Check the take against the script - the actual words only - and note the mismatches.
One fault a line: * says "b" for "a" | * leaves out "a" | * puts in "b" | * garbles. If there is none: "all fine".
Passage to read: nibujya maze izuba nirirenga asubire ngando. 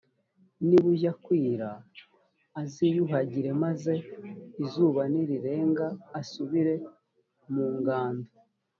* puts in "kwira aziyuhagire"
* puts in "mu"